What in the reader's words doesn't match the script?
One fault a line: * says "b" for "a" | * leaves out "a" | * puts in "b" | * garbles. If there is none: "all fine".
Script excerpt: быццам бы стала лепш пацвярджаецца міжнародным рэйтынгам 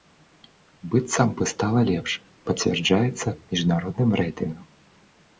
all fine